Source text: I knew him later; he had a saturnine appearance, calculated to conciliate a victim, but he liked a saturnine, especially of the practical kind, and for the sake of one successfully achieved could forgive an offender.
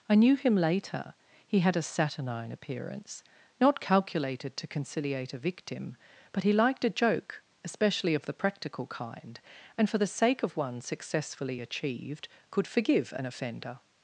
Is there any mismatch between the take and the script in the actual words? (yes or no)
yes